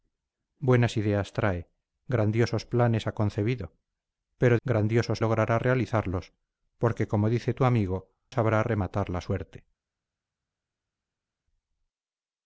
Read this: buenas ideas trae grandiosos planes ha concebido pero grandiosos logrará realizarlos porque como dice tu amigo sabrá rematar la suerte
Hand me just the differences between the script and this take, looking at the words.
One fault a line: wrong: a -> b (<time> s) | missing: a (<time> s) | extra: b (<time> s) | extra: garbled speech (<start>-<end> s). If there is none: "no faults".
no faults